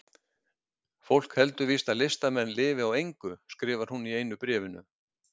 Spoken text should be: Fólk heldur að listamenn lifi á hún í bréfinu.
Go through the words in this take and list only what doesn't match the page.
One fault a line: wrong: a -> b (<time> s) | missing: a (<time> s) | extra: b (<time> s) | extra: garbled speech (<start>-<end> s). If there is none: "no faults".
extra: víst (1.7 s)
extra: engu skrifar (3.0 s)
extra: einu (4.2 s)